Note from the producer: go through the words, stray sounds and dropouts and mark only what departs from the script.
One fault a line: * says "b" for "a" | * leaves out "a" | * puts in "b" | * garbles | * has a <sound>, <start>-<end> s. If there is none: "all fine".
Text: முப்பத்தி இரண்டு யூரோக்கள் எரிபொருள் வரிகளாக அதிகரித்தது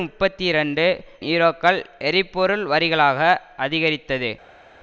all fine